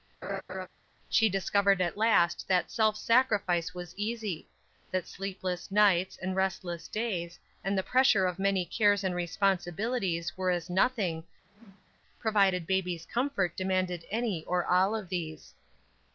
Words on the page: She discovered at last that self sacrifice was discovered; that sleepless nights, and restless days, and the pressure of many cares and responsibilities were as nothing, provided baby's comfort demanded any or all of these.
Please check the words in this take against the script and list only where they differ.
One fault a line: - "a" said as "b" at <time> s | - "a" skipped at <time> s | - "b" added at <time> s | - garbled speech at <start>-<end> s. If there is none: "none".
- "discovered" said as "easy" at 4.0 s